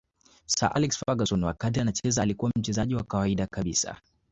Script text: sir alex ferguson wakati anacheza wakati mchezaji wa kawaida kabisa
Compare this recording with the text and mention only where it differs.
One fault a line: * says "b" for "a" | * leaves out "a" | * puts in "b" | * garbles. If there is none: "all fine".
* says "alikuwa" for "wakati"